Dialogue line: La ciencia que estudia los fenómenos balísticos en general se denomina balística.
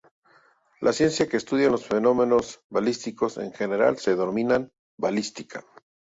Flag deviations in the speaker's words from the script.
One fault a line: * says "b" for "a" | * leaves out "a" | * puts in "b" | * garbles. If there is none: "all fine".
all fine